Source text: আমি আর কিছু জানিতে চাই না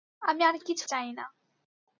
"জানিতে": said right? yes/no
no